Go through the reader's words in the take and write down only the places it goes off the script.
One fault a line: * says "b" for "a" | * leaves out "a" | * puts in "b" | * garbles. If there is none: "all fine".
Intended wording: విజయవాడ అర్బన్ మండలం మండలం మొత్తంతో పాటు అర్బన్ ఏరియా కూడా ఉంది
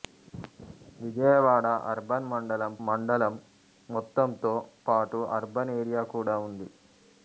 all fine